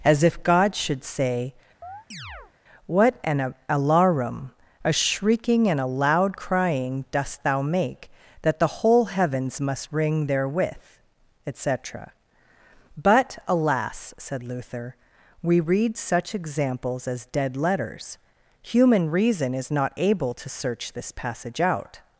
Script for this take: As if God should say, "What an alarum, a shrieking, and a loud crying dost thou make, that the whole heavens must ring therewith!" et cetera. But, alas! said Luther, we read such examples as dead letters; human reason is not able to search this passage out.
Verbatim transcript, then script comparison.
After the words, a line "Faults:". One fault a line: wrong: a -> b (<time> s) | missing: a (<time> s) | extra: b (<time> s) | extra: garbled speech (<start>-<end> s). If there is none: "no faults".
As if God should say, "What an alarum, a shrieking, and a loud crying dost thou make, that the whole heavens must ring therewith!" et cetera. But, alas! said Luther, we read such examples as dead letters; human reason is not able to search this passage out.
Faults:
no faults